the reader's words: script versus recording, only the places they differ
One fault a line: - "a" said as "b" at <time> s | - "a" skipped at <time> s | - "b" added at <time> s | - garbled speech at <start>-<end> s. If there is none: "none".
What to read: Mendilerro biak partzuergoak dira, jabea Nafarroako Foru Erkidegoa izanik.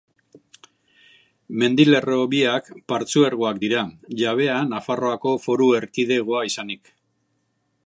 none